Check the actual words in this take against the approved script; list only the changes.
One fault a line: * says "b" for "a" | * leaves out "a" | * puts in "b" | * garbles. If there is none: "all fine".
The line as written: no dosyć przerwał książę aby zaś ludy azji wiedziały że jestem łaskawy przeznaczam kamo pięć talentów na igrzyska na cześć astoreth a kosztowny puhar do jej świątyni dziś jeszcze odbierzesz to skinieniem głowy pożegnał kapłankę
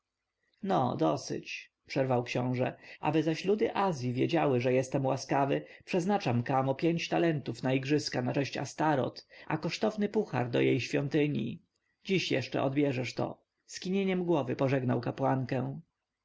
all fine